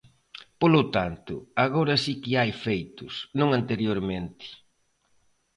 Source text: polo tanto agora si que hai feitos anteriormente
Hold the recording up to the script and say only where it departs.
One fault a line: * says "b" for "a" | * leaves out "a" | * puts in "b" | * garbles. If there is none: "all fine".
* puts in "non"